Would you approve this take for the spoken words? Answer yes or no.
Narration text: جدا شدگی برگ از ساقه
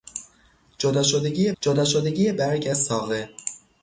no